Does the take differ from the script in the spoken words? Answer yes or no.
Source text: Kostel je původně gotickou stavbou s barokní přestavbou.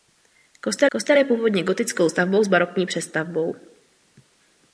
yes